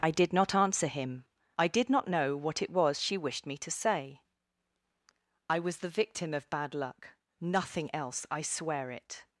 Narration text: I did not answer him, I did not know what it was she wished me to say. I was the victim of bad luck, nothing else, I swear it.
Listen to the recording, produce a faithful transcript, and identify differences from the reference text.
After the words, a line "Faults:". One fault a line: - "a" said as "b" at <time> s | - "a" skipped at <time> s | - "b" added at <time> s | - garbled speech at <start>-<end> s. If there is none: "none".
I did not answer him, I did not know what it was she wished me to say. I was the victim of bad luck, nothing else, I swear it.
Faults:
none